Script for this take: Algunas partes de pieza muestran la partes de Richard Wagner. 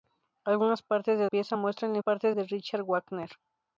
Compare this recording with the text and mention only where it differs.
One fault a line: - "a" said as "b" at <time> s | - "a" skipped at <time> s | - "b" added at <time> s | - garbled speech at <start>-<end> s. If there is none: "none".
none